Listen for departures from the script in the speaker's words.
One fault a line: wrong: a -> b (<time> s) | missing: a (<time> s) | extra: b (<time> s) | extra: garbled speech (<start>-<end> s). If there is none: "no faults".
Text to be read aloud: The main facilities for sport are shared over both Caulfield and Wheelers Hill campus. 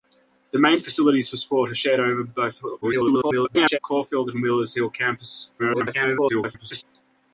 extra: garbled speech (2.8-3.8 s)
extra: garbled speech (5.6-6.8 s)